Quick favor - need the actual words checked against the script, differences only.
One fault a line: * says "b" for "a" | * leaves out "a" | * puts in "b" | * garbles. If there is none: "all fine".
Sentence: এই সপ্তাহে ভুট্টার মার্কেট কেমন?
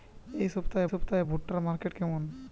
* puts in "সপ্তাহে"